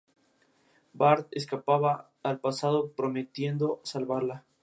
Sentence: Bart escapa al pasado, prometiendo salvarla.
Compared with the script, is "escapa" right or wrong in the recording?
right